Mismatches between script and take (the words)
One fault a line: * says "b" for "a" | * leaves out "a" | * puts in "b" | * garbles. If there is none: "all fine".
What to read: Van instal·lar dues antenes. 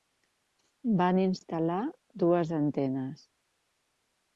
all fine